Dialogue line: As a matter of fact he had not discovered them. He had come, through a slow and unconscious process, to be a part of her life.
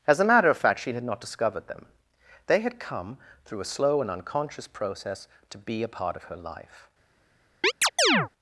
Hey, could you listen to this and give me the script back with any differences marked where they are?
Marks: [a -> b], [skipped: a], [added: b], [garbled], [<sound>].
As a matter of fact [he -> she] had not discovered them. [He -> They] had come, through a slow and unconscious process, to be a part of her life. [chirp]